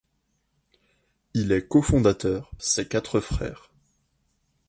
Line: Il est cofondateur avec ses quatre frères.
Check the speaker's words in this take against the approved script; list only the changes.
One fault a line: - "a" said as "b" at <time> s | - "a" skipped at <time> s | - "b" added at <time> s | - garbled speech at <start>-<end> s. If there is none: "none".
- "avec" skipped at 2.5 s